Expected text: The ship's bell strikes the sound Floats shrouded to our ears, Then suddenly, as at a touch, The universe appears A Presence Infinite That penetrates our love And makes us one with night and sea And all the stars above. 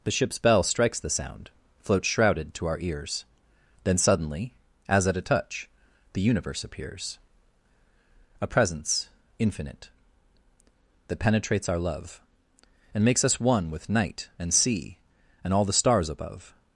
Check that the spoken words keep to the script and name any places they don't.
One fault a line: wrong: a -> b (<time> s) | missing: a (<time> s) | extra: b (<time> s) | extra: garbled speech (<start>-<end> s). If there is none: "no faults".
no faults